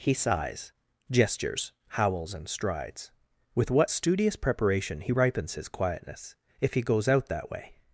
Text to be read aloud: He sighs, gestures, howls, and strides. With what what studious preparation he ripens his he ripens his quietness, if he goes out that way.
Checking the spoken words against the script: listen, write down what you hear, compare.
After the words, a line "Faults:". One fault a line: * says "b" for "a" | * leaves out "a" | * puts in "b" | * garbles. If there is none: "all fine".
He sighs, gestures, howls, and strides. With what studious preparation he ripens his quietness, if he goes out that way.
Faults:
* leaves out "what"
* leaves out "he ripens his"